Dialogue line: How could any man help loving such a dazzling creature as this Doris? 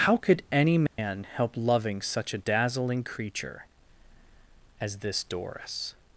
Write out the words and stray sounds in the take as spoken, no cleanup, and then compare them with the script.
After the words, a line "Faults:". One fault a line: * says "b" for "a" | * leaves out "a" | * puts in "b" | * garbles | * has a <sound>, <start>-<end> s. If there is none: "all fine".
How could any man help loving such a dazzling creature as this Doris?
Faults:
* has a dropout, 0.9-1.0 s